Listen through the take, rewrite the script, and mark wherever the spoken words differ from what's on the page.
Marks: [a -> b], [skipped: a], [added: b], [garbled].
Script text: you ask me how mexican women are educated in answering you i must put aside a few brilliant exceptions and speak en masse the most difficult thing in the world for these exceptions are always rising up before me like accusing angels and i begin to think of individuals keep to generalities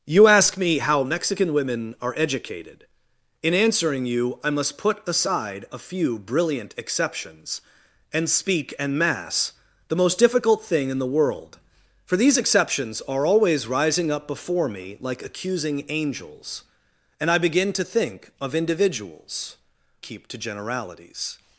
you ask me how mexican women are educated in answering you i must put aside a few brilliant exceptions and speak en masse the most difficult thing in the world for these exceptions are always rising up before me like accusing angels and i begin to think of individuals keep to generalities